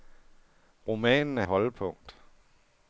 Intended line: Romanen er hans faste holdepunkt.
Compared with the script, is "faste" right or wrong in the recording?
wrong